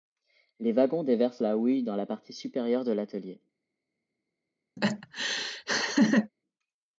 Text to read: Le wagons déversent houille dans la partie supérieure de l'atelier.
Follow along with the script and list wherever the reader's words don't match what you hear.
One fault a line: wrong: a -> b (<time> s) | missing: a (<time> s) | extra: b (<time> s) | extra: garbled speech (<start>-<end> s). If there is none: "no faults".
wrong: Le -> Les (0.6 s)
extra: la (1.4 s)